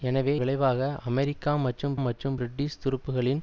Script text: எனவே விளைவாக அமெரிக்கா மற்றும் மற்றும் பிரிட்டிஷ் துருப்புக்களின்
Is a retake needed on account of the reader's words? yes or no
no